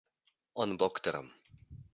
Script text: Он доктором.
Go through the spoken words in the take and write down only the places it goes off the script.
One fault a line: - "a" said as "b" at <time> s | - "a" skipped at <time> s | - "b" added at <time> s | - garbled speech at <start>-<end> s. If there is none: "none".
none